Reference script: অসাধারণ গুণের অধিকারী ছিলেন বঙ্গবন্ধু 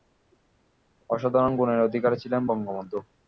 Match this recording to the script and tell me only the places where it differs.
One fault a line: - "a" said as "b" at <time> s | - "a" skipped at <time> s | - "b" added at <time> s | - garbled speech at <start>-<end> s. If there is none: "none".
none